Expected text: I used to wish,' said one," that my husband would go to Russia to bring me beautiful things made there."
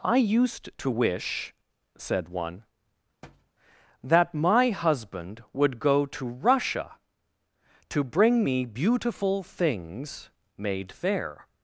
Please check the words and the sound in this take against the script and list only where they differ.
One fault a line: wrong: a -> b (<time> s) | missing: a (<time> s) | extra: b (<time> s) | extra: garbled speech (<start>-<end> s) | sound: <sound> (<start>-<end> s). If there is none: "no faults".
sound: thud (3.2-3.5 s)
wrong: there -> fair (10.9 s)